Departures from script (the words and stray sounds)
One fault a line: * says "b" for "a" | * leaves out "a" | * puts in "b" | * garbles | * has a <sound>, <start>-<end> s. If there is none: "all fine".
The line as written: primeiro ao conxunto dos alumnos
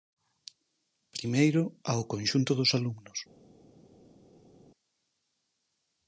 all fine